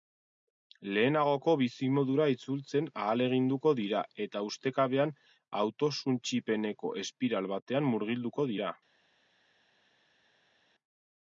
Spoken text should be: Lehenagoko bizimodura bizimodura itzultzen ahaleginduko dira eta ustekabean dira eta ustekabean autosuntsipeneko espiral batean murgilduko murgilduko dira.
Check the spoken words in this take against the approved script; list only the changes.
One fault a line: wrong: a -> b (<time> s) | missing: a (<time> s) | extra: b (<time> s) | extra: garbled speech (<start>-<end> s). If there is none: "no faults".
missing: bizimodura (2.3 s)
missing: dira eta ustekabean (5.2 s)
missing: murgilduko (8.5 s)